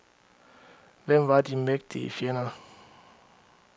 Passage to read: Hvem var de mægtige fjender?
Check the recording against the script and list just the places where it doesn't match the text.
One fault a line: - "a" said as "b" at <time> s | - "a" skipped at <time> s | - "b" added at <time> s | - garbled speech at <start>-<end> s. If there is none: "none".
none